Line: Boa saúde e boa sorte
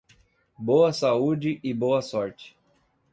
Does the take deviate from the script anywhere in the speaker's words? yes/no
no